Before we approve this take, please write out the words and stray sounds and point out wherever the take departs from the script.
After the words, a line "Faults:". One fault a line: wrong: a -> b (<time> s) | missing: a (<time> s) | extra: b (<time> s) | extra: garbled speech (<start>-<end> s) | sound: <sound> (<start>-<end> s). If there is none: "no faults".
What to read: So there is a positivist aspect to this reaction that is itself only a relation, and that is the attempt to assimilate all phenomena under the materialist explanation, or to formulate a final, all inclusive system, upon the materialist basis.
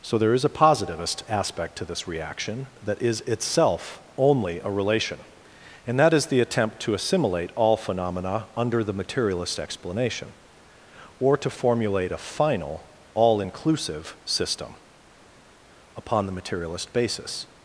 So there is a positivist aspect to this reaction that is itself only a relation, and that is the attempt to assimilate all phenomena under the materialist explanation, or to formulate a final, all inclusive system, upon the materialist basis.
Faults:
no faults